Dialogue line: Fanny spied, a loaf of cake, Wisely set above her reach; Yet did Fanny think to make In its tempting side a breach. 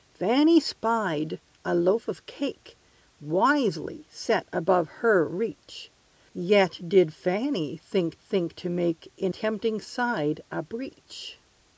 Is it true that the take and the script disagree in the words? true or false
true